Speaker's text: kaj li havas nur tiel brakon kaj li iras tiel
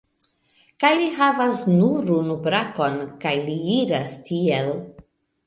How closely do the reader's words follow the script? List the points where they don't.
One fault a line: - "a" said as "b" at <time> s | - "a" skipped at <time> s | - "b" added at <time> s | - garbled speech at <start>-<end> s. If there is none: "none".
- "tiel" said as "unu" at 2.2 s